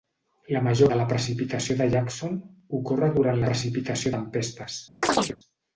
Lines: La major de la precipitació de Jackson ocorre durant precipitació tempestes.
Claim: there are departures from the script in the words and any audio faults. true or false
true